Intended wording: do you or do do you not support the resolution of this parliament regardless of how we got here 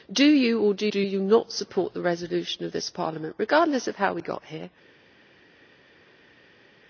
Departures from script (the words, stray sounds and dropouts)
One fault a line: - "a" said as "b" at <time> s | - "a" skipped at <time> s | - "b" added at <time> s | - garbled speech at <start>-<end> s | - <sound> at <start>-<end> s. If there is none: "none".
none